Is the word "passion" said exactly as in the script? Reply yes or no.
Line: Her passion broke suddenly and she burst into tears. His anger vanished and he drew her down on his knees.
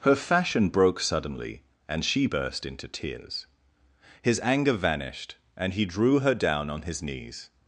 no